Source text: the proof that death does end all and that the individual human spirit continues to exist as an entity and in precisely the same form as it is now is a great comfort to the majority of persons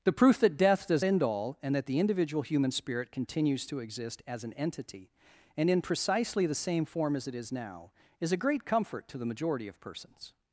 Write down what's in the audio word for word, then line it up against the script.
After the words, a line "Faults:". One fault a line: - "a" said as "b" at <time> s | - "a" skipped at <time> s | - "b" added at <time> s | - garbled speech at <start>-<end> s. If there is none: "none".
the proof that death does end all and that the individual human spirit continues to exist as an entity and in precisely the same form as it is now is a great comfort to the majority of persons
Faults:
none